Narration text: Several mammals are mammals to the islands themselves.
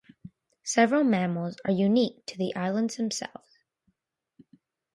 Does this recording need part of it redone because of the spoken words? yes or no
yes